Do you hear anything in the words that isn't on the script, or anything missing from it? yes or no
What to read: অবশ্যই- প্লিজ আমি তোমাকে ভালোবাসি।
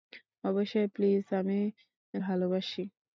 yes